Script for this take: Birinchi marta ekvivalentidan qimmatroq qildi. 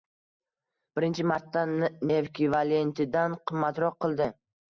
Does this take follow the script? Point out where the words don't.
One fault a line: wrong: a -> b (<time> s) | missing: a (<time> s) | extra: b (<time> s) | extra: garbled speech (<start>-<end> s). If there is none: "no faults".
no faults